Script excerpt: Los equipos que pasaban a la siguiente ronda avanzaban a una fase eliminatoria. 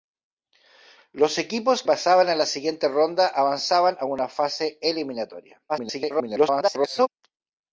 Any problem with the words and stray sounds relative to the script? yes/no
yes